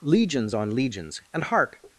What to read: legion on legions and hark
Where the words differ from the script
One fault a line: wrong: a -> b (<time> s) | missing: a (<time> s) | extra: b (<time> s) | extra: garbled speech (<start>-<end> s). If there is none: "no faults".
wrong: legion -> legions (0.0 s)